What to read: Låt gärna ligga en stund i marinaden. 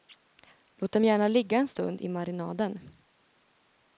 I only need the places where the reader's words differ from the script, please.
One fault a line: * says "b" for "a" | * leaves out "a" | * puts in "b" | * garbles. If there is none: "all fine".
* puts in "dem"